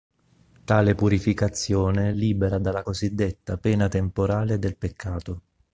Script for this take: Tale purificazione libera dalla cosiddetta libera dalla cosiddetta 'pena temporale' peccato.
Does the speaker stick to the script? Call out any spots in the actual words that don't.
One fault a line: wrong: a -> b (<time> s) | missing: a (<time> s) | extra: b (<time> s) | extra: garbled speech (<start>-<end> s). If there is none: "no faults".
missing: libera dalla cosiddetta (3.6 s)
extra: del (4.6 s)